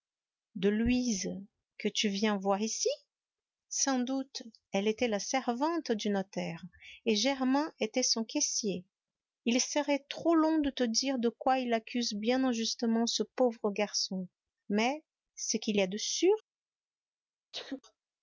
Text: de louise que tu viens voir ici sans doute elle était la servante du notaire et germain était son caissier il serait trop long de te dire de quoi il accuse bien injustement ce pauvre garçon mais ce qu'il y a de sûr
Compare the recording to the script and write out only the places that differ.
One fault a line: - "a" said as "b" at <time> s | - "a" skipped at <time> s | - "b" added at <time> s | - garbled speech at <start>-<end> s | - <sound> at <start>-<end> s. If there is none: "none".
- sneeze at 17.5-17.8 s